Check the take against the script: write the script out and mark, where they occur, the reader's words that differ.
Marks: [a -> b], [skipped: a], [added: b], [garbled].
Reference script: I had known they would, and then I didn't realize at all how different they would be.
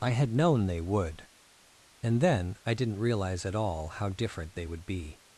I had known they would, and then I didn't realize at all how different they would be.